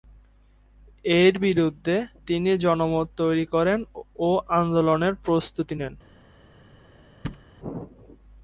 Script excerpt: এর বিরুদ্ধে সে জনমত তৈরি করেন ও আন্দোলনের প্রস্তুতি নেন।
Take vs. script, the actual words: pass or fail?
fail